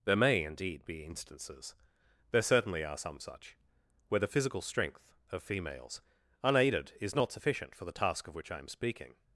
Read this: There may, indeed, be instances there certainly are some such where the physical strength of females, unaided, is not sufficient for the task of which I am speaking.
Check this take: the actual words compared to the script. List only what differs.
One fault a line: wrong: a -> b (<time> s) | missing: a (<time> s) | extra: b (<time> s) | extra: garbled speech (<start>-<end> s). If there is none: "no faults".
no faults